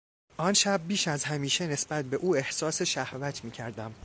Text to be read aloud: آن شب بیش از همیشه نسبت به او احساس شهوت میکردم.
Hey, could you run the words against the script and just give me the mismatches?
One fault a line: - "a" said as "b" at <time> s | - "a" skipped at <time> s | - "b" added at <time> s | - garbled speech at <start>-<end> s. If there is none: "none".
none